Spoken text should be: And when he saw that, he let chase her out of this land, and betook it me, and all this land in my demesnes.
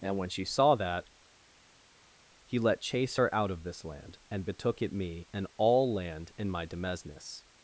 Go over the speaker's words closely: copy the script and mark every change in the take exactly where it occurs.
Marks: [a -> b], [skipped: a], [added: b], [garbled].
And when [he -> she] saw that, he let chase her out of this land, and betook it me, and all [skipped: this] land in my demesnes.